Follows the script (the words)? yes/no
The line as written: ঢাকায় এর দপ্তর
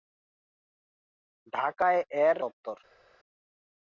yes